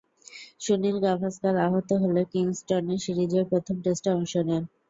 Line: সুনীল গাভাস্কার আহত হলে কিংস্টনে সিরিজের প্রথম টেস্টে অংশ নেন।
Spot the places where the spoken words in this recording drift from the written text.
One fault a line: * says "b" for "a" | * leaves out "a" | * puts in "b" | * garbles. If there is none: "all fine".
all fine